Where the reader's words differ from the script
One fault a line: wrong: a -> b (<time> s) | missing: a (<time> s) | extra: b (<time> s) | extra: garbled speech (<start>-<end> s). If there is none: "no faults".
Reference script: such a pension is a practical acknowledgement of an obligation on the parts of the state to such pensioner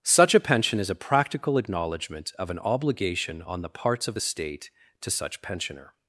no faults